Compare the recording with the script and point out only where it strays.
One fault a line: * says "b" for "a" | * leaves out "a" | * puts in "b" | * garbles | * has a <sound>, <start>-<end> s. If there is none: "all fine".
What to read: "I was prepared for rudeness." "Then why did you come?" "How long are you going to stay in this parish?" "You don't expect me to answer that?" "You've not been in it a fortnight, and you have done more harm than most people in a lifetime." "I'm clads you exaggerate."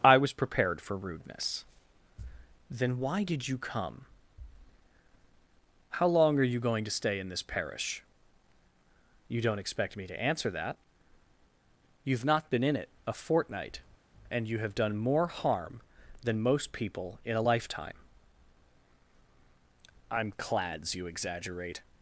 all fine